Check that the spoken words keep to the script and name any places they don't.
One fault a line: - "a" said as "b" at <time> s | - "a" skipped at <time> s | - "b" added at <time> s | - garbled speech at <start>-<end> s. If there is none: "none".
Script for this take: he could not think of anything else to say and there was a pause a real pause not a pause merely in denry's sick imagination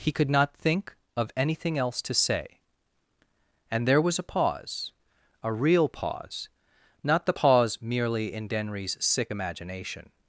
- "a" said as "the" at 7.3 s